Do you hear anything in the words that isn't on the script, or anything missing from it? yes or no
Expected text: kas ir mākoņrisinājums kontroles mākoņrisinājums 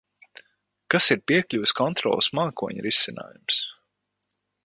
yes